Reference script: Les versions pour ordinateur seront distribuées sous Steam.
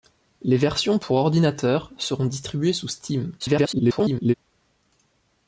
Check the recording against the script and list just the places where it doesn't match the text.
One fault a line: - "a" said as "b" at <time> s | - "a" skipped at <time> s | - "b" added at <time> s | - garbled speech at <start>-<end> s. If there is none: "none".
- garbled speech at 3.4-4.3 s